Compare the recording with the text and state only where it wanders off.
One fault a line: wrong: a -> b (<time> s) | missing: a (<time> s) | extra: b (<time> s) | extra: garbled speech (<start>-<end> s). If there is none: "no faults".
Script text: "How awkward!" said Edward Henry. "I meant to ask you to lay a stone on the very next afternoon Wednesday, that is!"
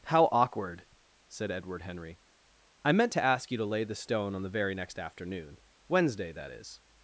wrong: a -> the (3.8 s)